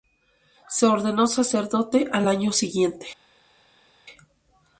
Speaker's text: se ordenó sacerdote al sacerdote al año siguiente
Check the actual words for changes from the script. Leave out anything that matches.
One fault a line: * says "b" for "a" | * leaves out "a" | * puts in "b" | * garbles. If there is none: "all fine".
* leaves out "sacerdote al"